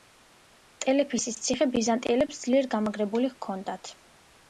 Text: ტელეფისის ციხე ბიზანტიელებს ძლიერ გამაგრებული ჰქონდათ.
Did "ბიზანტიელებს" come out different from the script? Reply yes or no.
no